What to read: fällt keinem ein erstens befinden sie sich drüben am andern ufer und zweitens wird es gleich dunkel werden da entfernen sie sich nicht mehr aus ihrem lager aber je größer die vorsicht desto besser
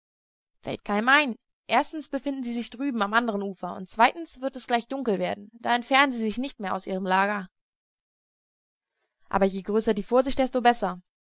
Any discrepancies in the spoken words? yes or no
no